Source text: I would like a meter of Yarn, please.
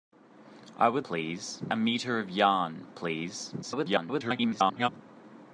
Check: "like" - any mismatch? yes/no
yes